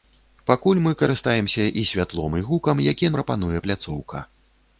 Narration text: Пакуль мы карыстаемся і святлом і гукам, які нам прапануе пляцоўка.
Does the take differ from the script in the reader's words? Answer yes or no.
yes